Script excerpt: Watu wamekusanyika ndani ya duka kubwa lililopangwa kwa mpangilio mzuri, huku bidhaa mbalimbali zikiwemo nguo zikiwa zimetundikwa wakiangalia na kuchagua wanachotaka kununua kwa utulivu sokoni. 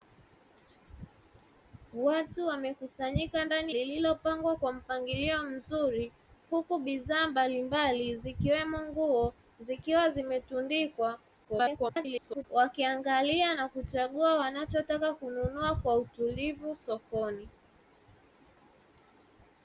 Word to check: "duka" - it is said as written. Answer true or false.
false